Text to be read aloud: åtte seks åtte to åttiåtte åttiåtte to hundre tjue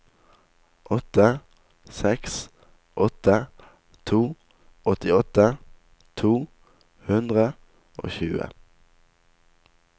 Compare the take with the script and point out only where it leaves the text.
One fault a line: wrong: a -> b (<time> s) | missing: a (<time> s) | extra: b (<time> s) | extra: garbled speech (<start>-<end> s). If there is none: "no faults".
missing: åttiåtte (5.5 s)
extra: og (8.0 s)